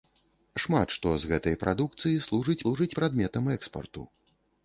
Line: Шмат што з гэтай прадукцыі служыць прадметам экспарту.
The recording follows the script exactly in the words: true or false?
false